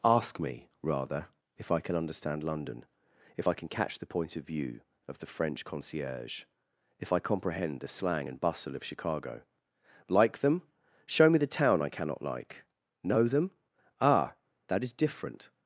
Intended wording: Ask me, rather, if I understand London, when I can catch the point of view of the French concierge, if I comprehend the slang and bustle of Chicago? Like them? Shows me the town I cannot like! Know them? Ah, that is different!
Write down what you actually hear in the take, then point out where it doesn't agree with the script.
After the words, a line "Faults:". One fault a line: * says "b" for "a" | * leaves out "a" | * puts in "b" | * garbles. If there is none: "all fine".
Ask me, rather, if I can understand London, if I can catch the point of view of the French concierge, if I comprehend the slang and bustle of Chicago? Like them? Show me the town I cannot like! Know them? Ah, that is different!
Faults:
* puts in "can"
* says "if" for "when"
* says "Show" for "Shows"